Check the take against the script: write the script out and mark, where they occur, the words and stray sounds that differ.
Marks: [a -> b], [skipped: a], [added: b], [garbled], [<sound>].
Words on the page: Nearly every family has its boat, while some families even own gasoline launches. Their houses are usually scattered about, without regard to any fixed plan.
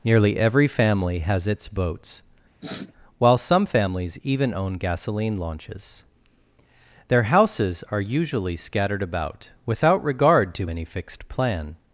Nearly every family has its [boat, -> boats] [sniff] while some families even own gasoline launches. Their houses are usually scattered about, without regard to any fixed plan.